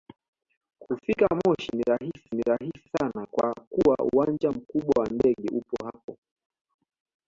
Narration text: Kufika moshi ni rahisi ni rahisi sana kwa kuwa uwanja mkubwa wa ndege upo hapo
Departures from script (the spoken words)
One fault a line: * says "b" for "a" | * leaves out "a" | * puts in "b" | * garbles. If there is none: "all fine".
all fine